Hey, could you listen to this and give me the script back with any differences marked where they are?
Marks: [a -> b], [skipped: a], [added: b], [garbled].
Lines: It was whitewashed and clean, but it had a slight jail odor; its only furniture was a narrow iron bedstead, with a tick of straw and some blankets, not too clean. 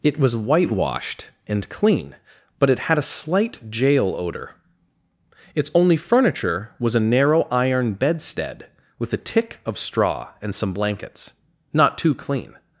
It was whitewashed and clean, but it had a slight jail odor; its only furniture was a narrow iron bedstead, with a tick of straw and some blankets, not too clean.